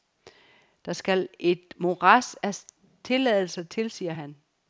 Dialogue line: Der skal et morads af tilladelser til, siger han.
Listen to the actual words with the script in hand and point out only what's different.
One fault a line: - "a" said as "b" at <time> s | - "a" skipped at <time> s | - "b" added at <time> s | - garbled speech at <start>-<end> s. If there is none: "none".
none